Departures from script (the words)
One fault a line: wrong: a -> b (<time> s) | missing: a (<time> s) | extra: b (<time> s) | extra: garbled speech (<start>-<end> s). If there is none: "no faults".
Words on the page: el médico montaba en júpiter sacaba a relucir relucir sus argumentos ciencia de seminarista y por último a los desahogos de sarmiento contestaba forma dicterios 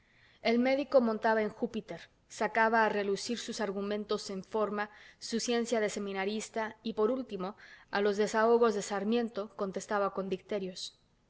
missing: relucir (3.4 s)
extra: en forma su (4.3 s)
wrong: forma -> con (10.1 s)